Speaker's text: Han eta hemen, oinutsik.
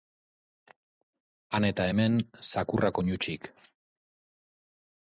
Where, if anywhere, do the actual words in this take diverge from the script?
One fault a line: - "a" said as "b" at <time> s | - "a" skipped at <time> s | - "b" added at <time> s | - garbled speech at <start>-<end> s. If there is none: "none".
- "zakurrak" added at 2.5 s